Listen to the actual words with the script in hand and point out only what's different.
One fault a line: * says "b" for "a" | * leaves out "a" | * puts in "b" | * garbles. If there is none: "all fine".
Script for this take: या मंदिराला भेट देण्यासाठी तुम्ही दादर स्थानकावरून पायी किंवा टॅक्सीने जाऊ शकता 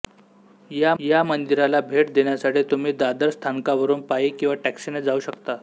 * puts in "या"